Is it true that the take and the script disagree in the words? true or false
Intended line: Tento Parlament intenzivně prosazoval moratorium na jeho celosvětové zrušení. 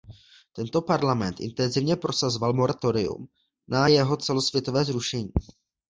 false